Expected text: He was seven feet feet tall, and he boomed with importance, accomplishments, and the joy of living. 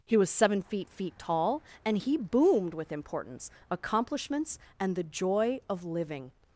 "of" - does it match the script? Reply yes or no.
yes